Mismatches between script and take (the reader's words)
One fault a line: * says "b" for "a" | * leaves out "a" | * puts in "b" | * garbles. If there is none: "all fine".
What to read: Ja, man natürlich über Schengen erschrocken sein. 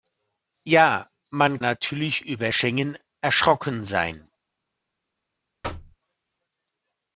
all fine